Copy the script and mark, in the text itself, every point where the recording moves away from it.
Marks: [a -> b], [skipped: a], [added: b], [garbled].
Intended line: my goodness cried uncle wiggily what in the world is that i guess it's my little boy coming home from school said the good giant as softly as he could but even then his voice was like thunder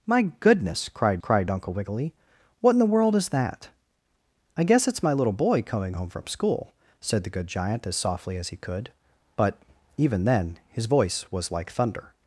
my goodness cried [added: cried] uncle wiggily what in the world is that i guess it's my little boy coming home from school said the good giant as softly as he could but even then his voice was like thunder